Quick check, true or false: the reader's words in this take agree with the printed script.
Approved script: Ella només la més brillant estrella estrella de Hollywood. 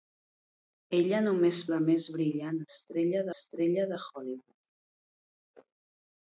true